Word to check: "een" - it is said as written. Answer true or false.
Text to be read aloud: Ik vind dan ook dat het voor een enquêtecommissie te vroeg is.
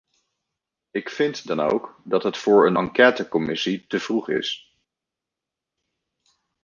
true